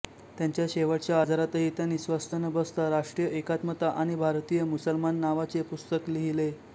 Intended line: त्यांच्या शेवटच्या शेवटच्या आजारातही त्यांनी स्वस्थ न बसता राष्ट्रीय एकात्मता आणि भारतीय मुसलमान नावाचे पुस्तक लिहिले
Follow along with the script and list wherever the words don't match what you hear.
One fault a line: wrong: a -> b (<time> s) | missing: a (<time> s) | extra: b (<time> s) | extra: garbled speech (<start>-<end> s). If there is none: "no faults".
missing: शेवटच्या (1.2 s)